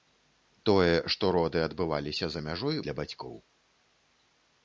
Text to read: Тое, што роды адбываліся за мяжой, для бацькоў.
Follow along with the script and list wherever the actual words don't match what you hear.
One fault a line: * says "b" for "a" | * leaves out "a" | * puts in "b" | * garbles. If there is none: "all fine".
all fine